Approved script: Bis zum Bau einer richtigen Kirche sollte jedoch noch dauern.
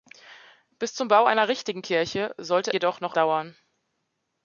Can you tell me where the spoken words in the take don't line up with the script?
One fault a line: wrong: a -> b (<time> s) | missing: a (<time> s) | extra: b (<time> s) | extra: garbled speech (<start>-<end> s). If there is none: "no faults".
no faults